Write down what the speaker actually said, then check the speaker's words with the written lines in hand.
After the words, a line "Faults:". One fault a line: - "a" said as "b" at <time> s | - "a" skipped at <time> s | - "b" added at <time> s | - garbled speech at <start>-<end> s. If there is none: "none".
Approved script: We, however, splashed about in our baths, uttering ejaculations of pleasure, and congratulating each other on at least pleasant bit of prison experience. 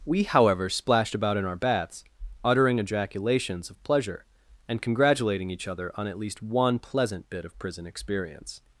We, however, splashed about in our baths, uttering ejaculations of pleasure, and congratulating each other on at least one pleasant bit of prison experience.
Faults:
- "one" added at 6.4 s